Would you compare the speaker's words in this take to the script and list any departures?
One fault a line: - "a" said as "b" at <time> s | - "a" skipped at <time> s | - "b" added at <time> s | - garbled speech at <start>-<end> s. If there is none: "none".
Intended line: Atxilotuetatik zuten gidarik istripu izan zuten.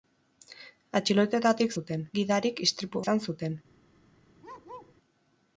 none